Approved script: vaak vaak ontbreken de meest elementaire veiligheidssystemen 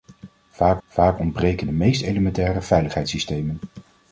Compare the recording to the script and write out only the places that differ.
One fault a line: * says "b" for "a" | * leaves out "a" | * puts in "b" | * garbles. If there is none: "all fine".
all fine